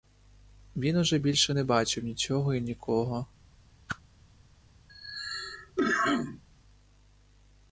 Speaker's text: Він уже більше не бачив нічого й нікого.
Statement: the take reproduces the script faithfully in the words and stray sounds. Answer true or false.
false